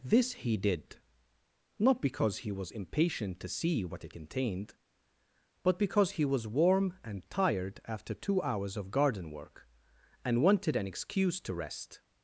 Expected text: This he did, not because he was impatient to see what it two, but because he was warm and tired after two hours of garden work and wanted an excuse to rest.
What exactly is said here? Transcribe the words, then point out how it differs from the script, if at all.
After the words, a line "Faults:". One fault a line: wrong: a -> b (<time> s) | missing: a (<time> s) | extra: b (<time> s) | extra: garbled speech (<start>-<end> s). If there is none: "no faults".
This he did, not because he was impatient to see what it contained, but because he was warm and tired after two hours of garden work and wanted an excuse to rest.
Faults:
wrong: two -> contained (4.1 s)